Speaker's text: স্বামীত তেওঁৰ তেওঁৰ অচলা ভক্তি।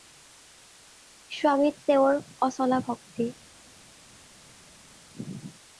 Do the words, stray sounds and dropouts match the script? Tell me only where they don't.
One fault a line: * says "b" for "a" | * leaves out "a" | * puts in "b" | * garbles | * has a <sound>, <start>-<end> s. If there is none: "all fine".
* leaves out "তেওঁৰ"